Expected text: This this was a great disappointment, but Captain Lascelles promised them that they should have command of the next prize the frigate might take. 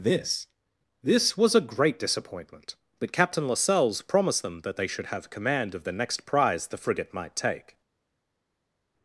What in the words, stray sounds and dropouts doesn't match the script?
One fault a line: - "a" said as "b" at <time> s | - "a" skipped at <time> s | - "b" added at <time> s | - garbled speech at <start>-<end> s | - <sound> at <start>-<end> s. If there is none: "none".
none